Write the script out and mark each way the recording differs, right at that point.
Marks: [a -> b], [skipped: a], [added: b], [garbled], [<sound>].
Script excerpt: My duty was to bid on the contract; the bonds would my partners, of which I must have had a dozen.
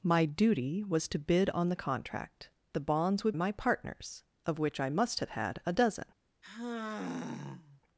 My duty was to bid on the contract; the bonds would my partners, of which I must have had a dozen. [sigh]